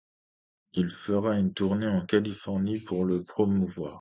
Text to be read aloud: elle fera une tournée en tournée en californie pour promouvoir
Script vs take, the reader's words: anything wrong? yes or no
yes